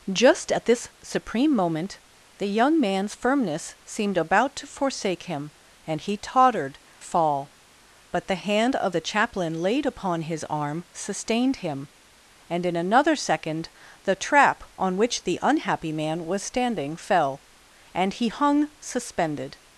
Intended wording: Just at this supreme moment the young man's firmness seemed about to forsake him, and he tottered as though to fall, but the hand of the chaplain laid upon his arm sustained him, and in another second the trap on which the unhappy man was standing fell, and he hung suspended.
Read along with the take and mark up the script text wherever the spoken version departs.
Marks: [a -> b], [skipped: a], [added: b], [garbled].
Just at this supreme moment the young man's firmness seemed about to forsake him, and he tottered [skipped: as though to] fall, but the hand of the chaplain laid upon his arm sustained him, and in another second the trap on which the unhappy man was standing fell, and he hung suspended.